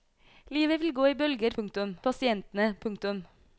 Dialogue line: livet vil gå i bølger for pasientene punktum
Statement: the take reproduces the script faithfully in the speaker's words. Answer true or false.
false